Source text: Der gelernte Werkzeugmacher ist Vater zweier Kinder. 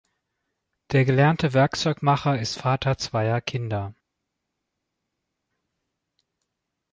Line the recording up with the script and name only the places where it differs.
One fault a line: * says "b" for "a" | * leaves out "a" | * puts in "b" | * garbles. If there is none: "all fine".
all fine